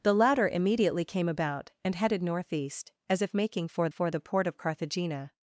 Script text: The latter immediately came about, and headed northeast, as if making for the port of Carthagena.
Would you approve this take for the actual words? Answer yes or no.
no